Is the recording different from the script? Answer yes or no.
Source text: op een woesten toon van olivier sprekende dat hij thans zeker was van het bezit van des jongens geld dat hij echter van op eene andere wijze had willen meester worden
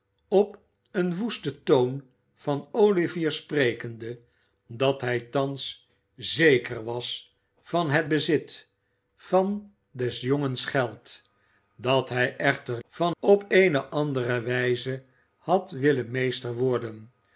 no